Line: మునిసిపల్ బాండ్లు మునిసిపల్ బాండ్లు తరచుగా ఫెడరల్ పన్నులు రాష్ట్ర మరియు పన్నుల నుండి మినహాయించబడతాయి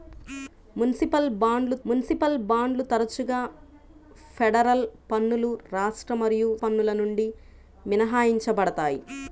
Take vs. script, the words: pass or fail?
pass